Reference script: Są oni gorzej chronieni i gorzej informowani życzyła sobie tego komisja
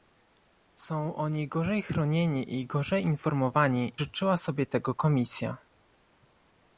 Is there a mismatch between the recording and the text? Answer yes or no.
no